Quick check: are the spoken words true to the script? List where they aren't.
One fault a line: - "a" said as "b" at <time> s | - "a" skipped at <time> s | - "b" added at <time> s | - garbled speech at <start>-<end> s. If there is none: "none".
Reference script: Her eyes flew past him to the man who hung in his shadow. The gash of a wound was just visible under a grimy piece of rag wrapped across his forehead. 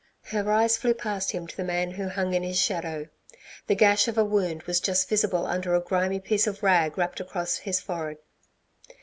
none